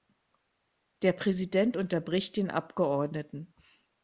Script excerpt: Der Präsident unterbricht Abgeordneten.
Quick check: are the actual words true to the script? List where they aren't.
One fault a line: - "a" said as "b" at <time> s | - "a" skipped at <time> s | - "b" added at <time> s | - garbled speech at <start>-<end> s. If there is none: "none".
- "den" added at 2.4 s